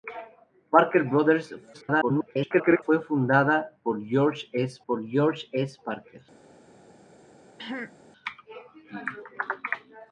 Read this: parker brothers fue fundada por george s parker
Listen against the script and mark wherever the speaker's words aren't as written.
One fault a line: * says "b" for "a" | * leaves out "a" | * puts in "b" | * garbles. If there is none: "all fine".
* garbles
* puts in "por george s"